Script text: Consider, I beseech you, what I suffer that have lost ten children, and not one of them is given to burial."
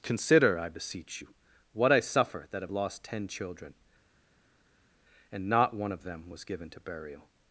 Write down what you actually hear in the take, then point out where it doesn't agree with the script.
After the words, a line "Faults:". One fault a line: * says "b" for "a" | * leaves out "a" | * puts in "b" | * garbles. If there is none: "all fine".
Consider, I beseech you, what I suffer that have lost ten children, and not one of them was given to burial."
Faults:
* says "was" for "is"